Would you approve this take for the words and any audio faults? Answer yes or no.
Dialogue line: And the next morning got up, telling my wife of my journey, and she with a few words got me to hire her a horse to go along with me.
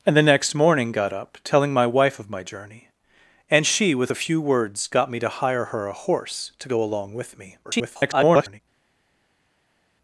no